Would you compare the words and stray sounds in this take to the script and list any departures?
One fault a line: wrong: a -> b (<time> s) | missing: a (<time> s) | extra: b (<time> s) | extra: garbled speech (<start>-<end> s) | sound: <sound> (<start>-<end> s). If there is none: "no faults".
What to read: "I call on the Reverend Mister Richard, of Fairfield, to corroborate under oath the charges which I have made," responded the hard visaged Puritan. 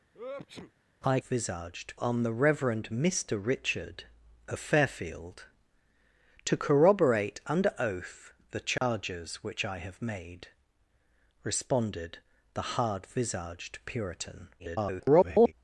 sound: sneeze (0.1-0.7 s)
wrong: call -> visaged (1.2 s)
sound: dropout (8.8-8.8 s)
extra: garbled speech (14.6-15.5 s)